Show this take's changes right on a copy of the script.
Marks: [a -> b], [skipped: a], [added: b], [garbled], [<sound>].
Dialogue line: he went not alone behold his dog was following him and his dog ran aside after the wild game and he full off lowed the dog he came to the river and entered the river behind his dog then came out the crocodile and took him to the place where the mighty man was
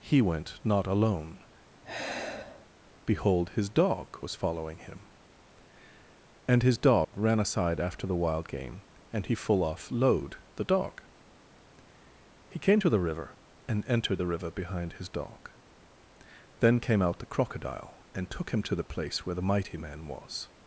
he went not alone [sigh] behold his dog was following him and his dog [dropout] ran aside after the wild game and he full off lowed the dog he came to the river and entered the river behind his dog then came out the crocodile and took him to the place where the mighty man was